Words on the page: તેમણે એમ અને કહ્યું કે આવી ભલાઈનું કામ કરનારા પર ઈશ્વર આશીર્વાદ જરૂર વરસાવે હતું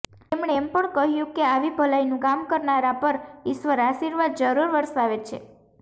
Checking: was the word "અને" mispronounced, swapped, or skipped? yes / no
yes